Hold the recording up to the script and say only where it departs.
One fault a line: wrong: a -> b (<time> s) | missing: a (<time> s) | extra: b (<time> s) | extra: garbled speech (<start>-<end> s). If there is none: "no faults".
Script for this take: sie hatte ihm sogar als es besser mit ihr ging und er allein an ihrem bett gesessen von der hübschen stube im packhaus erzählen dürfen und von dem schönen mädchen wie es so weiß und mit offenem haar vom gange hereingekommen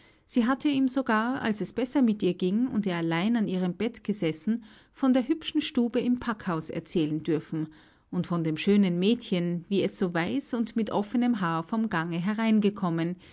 no faults